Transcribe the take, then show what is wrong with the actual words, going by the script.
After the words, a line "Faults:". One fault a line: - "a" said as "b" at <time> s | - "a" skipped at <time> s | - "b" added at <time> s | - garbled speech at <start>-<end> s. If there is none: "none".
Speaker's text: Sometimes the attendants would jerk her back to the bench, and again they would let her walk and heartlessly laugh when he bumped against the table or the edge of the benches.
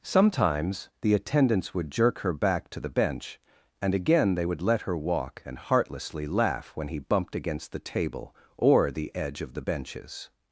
Sometimes the attendants would jerk her back to the bench, and again they would let her walk and heartlessly laugh when he bumped against the table or the edge of the benches.
Faults:
none